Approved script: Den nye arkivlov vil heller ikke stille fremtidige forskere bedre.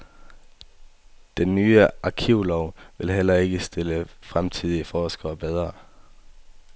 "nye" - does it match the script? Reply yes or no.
yes